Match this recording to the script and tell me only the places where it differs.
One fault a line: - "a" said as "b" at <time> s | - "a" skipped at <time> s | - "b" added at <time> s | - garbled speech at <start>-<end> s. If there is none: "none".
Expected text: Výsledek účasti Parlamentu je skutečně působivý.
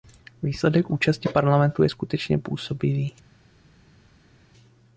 none